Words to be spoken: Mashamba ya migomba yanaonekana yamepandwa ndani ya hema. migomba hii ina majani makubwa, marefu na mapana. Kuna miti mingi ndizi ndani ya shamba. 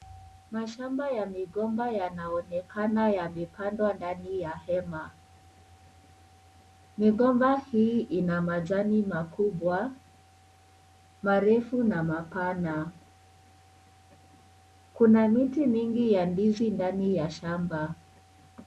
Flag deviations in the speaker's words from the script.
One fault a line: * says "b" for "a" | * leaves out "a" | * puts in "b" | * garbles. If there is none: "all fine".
* puts in "ya"